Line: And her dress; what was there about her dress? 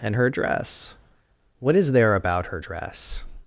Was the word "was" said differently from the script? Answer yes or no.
yes